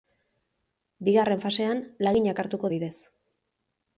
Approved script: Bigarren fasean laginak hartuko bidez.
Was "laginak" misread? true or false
false